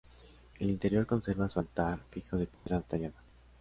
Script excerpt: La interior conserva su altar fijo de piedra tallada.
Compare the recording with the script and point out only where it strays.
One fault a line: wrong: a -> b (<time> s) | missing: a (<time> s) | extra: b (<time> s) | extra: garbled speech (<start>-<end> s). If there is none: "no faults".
wrong: La -> El (0.6 s)